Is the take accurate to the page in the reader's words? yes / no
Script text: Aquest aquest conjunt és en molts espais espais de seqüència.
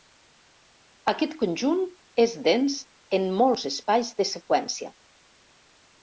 no